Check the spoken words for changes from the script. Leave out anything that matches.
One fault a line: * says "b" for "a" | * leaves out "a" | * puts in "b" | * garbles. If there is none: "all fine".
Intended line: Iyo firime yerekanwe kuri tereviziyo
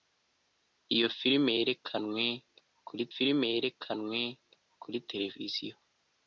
* puts in "firime yerekanwe kuri"